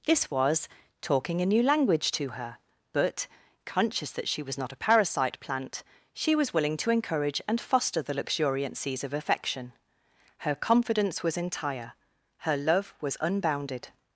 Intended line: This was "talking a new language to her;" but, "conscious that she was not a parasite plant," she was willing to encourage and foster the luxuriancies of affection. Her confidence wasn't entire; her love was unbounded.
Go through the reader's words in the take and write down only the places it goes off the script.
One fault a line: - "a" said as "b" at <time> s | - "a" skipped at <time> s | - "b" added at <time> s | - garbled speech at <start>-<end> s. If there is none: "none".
- "wasn't" said as "was" at 11.2 s